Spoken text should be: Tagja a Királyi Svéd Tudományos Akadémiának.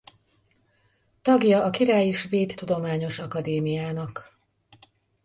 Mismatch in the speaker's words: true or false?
false